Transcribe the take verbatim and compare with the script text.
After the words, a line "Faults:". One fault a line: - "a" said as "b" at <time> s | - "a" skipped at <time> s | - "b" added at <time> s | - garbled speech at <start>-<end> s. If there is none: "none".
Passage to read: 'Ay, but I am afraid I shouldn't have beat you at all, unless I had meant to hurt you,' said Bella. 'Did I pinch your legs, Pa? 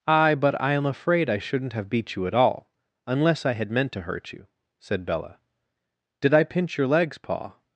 'Ay, but I am afraid I shouldn't have beat you at all, unless I had meant to hurt you,' said Bella. 'Did I pinch your legs, Pa?
Faults:
none